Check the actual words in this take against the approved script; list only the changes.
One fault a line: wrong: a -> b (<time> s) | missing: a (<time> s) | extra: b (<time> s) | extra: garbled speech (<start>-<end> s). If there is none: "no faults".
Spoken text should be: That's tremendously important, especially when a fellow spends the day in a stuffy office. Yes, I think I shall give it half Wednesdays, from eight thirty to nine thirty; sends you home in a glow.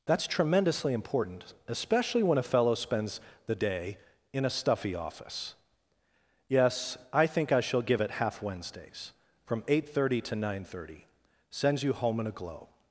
no faults